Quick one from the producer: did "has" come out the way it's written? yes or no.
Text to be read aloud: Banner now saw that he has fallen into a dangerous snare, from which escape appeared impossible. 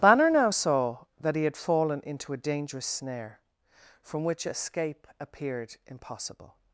no